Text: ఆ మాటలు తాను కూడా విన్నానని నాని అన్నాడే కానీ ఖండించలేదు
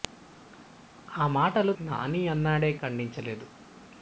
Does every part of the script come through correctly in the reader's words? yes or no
no